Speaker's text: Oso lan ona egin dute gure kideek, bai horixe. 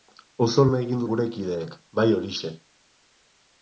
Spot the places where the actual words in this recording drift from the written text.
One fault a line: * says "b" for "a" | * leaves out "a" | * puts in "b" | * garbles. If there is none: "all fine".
* leaves out "lan"
* leaves out "dute"